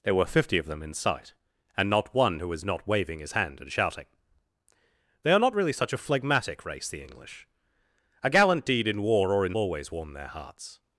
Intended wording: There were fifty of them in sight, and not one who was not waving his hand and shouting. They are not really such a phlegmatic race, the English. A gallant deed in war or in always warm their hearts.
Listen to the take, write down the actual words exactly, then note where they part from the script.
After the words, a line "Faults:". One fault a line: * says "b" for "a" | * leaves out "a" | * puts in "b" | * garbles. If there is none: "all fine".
There were fifty of them in sight, and not one who was not waving his hand and shouting. They are not really such a phlegmatic race, the English. A gallant deed in war or in always warm their hearts.
Faults:
all fine